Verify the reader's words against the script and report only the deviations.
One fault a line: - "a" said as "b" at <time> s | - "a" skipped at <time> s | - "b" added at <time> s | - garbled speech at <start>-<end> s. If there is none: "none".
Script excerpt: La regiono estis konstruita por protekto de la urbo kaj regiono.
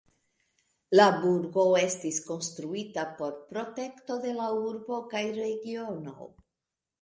- "regiono" said as "burgo" at 1.2 s